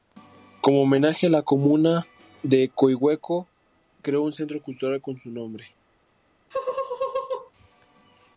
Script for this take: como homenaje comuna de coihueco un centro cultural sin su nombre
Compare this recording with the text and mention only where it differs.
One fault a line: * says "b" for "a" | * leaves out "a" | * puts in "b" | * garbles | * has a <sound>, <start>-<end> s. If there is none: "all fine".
* puts in "la"
* puts in "creó"
* says "con" for "sin"
* has a laugh, 6.5-7.5 s